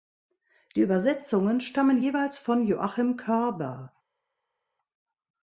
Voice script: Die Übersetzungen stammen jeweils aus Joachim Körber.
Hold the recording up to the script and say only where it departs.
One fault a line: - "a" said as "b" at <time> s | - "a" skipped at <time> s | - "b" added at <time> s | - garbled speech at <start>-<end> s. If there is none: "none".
- "aus" said as "von" at 2.4 s